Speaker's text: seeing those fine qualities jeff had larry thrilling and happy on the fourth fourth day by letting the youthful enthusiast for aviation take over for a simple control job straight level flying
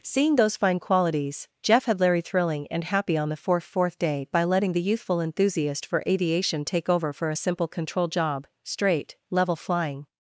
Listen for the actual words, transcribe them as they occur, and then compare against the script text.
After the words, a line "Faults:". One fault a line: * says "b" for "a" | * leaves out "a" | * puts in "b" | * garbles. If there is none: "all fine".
seeing those fine qualities jeff had larry thrilling and happy on the fourth fourth day by letting the youthful enthusiast for aviation take over for a simple control job straight level flying
Faults:
all fine